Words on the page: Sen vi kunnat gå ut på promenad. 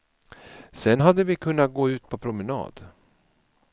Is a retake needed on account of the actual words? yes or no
yes